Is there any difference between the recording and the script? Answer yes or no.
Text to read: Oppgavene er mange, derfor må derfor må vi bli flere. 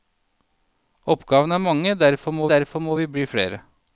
no